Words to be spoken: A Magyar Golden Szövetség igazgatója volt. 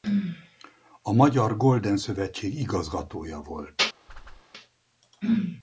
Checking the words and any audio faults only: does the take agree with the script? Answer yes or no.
no